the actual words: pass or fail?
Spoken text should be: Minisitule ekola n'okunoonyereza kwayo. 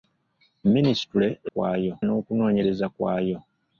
fail